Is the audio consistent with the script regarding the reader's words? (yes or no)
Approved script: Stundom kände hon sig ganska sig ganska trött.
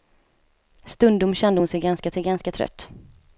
yes